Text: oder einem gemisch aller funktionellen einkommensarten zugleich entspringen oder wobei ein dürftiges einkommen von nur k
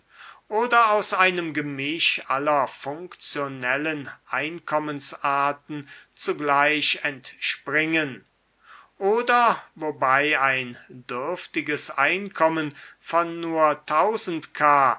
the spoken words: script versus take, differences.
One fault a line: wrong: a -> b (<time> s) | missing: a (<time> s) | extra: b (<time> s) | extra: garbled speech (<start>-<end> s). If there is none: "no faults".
extra: aus (0.9 s)